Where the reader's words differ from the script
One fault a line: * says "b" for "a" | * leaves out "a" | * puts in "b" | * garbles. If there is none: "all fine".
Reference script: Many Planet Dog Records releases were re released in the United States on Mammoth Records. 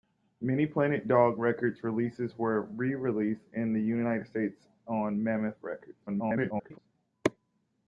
* garbles